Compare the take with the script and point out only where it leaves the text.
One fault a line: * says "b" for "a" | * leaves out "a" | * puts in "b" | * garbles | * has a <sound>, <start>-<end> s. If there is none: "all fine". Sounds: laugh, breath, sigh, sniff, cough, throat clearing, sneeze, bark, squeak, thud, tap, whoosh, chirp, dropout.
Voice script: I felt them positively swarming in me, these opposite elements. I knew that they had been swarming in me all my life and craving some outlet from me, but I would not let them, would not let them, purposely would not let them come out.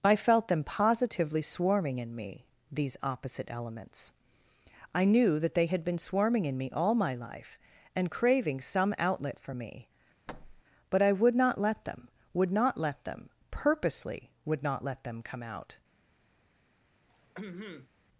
* says "for" for "from"
* has a thud, 10.3-10.6 s
* has a throat clearing, 17.1-17.9 s